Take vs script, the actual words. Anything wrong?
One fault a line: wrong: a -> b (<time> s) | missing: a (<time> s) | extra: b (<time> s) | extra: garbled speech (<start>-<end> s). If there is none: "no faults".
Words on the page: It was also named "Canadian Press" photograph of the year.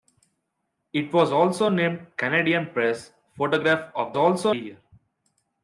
wrong: the -> also (4.2 s)